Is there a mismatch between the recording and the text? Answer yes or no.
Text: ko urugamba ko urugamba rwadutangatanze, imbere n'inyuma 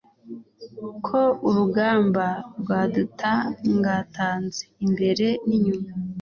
yes